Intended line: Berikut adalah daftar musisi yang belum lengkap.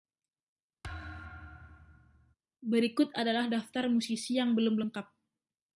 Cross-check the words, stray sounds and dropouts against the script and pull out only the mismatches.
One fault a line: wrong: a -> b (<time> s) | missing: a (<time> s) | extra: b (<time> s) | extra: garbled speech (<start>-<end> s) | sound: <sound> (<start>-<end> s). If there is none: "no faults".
sound: thud (0.8-2.4 s)